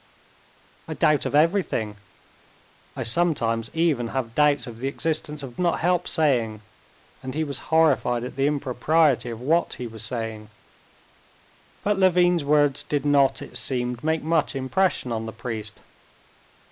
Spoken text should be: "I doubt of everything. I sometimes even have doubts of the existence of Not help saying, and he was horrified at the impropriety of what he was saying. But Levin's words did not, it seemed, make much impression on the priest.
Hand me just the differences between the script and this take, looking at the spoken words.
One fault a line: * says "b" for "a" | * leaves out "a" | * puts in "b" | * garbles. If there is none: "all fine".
all fine